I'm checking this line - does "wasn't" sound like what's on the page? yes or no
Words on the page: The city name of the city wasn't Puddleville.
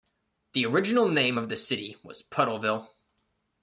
no